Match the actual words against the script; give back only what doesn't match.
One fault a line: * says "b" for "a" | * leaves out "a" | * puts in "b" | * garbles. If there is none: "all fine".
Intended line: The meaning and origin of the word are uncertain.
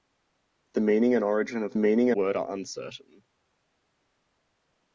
* says "meaning" for "the"